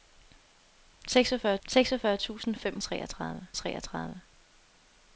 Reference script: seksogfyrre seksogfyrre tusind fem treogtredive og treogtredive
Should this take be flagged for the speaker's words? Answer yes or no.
no